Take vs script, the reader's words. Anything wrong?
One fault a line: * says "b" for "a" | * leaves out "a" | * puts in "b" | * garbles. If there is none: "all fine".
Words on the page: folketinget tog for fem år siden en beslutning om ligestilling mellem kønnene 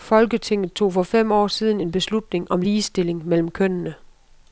all fine